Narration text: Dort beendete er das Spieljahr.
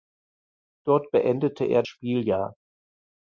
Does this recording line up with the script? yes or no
no